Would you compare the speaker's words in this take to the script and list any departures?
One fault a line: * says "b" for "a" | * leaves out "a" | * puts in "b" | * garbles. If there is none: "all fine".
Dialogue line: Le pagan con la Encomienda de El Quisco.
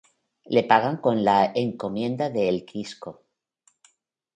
all fine